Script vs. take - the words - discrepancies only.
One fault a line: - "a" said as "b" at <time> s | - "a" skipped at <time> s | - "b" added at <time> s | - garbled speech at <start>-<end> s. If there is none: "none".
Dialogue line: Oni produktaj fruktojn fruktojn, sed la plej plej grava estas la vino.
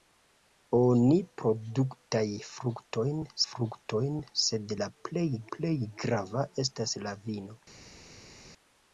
none